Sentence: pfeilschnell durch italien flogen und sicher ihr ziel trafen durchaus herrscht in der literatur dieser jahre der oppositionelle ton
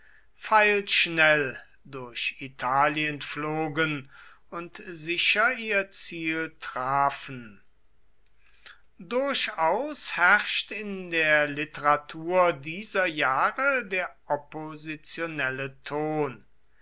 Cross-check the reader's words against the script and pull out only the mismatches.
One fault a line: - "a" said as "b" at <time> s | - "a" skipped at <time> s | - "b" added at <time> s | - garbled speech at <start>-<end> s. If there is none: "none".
none